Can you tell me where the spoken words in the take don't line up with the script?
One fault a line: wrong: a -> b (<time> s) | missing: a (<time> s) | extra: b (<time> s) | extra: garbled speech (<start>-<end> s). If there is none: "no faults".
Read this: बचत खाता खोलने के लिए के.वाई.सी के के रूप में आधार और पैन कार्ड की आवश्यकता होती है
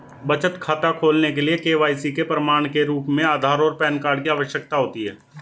extra: प्रमाण (2.2 s)